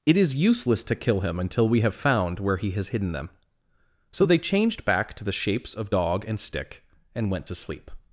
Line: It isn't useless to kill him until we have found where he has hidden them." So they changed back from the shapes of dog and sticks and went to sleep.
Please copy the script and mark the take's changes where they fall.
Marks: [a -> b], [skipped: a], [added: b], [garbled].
It [isn't -> is] useless to kill him until we have found where he has hidden them." So they changed back [from -> to] the shapes of dog and [sticks -> stick] and went to sleep.